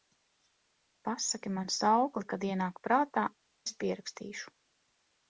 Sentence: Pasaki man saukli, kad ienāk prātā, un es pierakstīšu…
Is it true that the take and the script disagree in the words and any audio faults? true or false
true